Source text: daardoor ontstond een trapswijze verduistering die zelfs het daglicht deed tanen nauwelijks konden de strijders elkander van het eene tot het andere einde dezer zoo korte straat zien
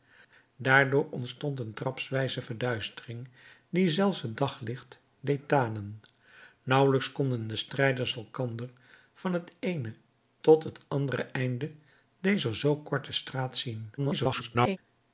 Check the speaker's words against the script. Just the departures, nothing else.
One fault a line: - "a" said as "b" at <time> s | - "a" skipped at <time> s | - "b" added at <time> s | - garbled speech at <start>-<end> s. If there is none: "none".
- garbled speech at 14.0-14.8 s